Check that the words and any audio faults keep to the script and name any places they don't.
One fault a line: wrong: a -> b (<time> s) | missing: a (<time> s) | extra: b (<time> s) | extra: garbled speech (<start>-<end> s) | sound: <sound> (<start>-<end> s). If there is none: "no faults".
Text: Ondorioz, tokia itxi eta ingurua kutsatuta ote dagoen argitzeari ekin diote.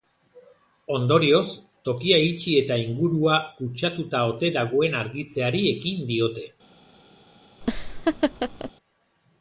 sound: laugh (7.6-8.7 s)